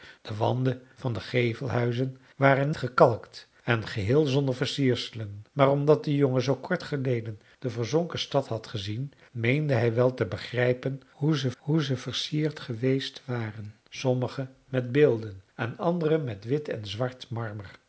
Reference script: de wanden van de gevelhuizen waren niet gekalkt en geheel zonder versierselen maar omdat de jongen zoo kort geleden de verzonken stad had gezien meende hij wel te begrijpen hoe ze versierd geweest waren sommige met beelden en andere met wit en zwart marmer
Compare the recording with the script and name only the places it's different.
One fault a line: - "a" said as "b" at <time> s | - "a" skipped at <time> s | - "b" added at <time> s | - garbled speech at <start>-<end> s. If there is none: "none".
- "niet" skipped at 2.7 s
- "hoe ze" added at 11.6 s